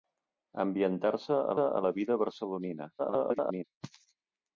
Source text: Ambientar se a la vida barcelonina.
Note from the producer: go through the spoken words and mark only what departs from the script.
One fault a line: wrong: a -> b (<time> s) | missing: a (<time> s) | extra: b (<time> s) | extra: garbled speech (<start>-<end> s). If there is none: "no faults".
extra: a (1.6 s)
extra: garbled speech (3.0-3.6 s)